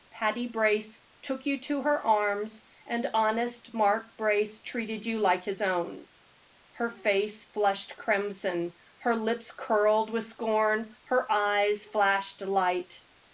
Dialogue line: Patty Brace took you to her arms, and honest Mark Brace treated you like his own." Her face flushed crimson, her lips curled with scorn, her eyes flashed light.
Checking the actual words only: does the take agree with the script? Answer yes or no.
yes